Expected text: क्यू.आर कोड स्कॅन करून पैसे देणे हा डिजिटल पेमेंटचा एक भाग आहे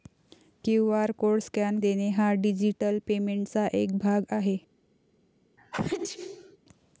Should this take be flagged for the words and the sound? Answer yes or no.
yes